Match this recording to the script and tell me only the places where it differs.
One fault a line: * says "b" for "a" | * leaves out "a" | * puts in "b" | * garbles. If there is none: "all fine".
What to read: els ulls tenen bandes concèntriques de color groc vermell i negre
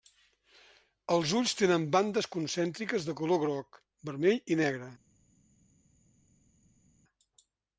all fine